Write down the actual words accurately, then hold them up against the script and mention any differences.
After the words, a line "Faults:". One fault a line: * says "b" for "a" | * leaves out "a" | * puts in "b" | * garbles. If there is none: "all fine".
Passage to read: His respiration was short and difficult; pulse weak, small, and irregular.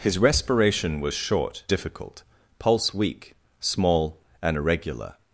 His respiration was short difficult; pulse weak, small, and irregular.
Faults:
* leaves out "and"